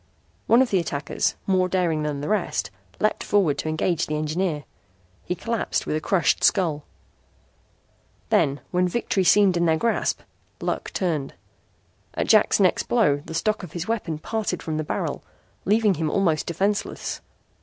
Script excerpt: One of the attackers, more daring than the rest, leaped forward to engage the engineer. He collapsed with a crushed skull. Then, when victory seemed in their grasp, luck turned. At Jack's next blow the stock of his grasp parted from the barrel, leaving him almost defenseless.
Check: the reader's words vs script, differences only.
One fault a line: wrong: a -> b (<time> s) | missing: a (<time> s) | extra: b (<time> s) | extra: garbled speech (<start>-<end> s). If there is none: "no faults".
wrong: grasp -> weapon (13.9 s)